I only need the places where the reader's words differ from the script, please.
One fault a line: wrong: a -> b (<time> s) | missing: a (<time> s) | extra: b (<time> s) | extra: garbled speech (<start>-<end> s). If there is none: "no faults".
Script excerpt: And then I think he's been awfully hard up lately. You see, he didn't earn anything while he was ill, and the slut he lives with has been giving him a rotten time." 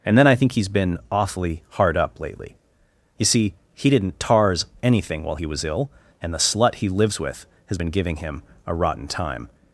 wrong: earn -> tars (4.2 s)